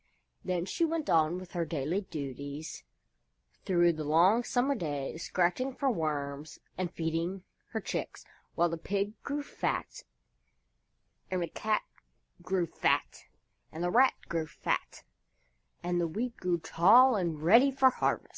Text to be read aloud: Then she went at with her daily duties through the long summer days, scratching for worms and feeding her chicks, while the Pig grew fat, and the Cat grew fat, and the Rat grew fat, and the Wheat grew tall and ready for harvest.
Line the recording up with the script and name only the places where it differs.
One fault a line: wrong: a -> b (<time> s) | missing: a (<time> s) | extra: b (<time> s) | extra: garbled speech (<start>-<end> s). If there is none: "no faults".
wrong: at -> on (1.1 s)